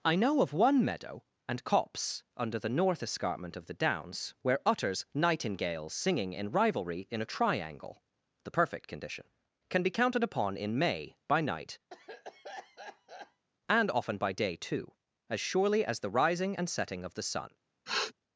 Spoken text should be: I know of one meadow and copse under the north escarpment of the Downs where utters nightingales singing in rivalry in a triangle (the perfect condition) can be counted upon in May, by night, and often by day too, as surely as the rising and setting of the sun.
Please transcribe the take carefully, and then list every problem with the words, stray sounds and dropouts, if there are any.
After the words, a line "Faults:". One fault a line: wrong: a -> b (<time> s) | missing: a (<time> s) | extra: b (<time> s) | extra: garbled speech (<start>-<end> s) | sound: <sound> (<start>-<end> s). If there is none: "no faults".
I know of one meadow and copse under the north escarpment of the Downs where utters nightingales singing in rivalry in a triangle (the perfect condition) can be counted upon in May, by night, and often by day too, as surely as the rising and setting of the sun.
Faults:
sound: cough (11.9-13.4 s)
sound: sniff (17.9-18.1 s)